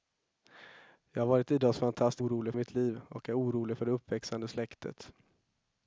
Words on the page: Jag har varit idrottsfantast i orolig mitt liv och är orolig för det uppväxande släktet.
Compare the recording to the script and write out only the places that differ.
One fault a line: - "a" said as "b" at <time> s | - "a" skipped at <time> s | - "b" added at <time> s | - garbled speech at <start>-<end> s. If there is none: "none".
none